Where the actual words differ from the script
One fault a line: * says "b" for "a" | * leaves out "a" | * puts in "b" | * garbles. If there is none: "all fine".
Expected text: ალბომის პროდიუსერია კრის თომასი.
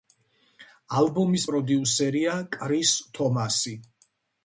all fine